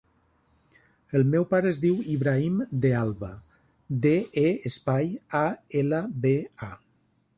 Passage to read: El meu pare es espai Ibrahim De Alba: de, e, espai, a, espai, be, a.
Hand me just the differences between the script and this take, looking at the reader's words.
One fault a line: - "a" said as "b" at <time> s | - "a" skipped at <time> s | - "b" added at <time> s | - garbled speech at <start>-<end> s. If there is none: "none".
- "espai" said as "diu" at 1.9 s
- "espai" said as "ela" at 5.8 s